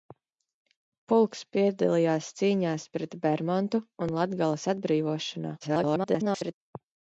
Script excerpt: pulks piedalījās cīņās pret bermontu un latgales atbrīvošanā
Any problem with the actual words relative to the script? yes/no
yes